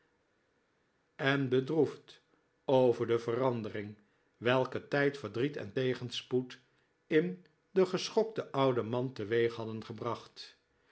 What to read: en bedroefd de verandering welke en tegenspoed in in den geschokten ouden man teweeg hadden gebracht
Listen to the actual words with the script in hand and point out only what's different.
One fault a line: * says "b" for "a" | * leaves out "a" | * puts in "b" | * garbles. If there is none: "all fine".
* puts in "over"
* puts in "tijd verdriet"
* leaves out "in"